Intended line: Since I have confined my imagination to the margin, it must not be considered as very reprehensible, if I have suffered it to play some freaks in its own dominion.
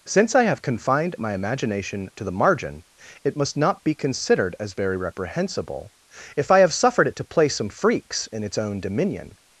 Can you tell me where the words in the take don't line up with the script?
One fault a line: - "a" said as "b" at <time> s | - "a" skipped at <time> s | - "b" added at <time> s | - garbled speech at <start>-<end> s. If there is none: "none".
none